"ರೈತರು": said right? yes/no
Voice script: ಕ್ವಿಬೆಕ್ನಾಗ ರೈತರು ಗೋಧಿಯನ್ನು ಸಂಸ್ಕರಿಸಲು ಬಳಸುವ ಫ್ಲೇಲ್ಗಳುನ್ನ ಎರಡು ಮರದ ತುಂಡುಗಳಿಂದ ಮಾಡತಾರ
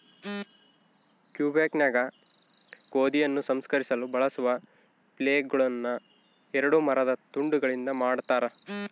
no